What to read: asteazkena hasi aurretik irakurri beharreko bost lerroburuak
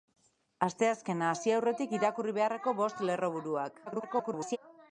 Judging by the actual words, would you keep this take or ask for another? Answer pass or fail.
fail